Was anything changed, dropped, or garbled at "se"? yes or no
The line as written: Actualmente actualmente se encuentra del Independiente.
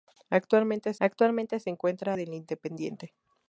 no